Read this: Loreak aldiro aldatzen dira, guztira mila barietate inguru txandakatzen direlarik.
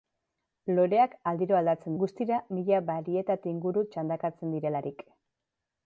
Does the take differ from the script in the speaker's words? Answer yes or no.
yes